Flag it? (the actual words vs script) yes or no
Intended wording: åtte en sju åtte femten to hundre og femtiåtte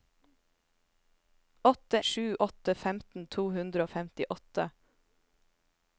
yes